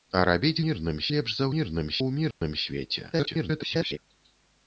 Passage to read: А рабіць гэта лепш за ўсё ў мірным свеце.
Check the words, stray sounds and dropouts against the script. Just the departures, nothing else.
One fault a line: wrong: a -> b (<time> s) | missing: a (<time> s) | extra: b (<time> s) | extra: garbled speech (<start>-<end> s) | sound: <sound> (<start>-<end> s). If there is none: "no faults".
wrong: гэта -> мірным (0.6 s)
wrong: ўсё -> мірным (1.5 s)
sound: dropout (2.3-2.4 s)
extra: garbled speech (3.1-4.0 s)